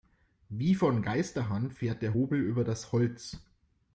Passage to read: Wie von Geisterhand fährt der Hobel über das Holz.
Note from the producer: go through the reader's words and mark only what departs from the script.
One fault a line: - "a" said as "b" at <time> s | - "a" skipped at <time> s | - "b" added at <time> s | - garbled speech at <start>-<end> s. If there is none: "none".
none